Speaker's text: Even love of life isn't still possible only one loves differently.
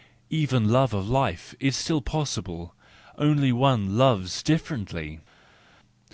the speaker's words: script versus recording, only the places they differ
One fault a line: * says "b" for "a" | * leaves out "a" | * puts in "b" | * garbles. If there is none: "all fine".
* says "is" for "isn't"